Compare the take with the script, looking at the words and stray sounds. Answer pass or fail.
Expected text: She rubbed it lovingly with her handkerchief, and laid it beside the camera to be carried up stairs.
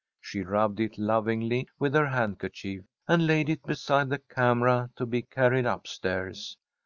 pass